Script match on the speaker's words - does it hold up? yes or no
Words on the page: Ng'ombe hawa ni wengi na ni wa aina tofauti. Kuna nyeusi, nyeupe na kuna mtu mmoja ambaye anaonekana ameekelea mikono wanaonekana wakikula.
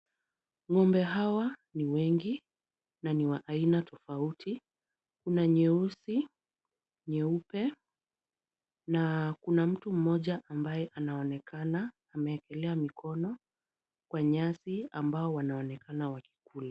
no